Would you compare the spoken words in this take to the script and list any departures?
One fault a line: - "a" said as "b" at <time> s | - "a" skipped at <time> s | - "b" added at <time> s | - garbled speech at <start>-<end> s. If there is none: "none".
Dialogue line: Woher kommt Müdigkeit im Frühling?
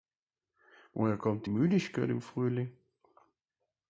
none